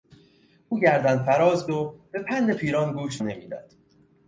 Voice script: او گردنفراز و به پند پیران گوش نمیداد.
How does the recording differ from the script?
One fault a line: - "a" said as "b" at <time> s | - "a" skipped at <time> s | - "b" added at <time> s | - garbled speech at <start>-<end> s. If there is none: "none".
none